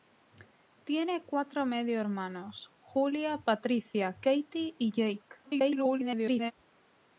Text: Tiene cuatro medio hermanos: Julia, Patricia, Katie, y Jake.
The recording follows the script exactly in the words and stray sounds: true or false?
false